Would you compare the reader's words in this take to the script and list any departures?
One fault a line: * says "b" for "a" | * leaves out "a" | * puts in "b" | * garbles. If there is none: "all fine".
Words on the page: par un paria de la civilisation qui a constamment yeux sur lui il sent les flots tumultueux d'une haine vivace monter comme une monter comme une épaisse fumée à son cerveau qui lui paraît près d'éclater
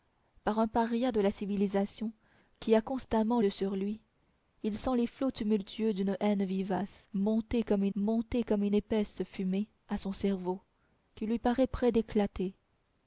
all fine